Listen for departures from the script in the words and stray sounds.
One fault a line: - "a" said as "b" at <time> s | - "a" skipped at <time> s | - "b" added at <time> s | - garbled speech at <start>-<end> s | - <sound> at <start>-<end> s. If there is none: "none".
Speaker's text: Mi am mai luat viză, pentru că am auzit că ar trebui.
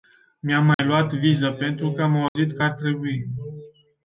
- dropout at 0.7-0.8 s
- dropout at 2.3-2.4 s